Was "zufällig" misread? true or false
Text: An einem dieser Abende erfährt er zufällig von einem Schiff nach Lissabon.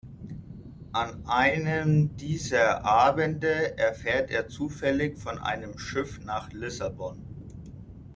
false